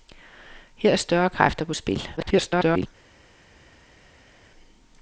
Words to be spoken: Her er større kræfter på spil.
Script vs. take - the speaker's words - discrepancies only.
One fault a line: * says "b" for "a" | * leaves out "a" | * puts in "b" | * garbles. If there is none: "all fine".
* garbles